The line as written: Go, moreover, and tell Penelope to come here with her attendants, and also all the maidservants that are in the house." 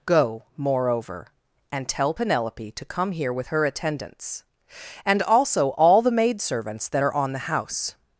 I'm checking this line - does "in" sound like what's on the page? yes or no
no